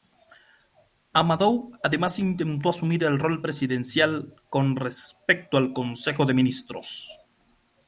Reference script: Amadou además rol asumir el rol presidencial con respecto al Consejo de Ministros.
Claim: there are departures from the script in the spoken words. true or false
true